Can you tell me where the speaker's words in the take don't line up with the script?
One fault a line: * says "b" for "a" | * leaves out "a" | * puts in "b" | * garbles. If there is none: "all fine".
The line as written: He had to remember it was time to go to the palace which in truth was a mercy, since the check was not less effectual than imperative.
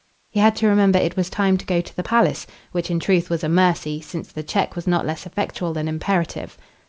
all fine